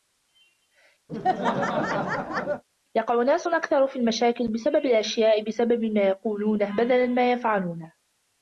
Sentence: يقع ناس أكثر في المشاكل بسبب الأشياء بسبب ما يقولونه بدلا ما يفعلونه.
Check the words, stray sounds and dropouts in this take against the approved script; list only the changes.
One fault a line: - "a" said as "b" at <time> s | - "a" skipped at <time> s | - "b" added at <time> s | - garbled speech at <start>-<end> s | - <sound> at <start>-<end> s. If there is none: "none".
- laugh at 1.1-2.6 s